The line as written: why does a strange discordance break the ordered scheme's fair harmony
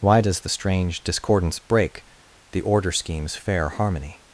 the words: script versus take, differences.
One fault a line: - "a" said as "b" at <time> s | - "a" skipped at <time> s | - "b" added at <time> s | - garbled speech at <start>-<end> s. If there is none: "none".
- "a" said as "the" at 0.4 s
- "ordered" said as "order" at 2.6 s